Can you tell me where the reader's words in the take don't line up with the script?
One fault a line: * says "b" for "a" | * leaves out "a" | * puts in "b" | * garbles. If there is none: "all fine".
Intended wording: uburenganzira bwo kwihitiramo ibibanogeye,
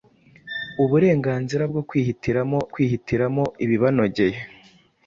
* puts in "kwihitiramo"